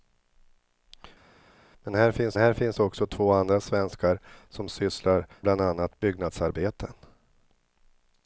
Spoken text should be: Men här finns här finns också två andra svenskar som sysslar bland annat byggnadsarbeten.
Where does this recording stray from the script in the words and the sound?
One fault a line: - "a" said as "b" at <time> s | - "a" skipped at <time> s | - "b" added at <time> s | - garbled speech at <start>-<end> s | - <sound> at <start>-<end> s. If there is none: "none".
none